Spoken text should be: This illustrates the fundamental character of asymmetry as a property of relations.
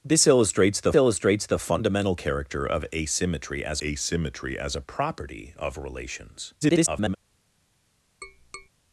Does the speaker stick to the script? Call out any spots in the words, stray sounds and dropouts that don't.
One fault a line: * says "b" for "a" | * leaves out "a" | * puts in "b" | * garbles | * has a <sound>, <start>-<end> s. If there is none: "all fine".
* puts in "illustrates the"
* puts in "asymmetry as"
* garbles
* has a tap, 8.2-8.7 s